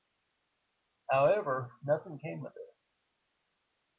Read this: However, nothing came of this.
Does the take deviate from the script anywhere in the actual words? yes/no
no